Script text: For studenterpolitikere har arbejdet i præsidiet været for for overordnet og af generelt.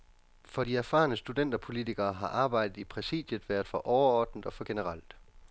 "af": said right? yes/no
no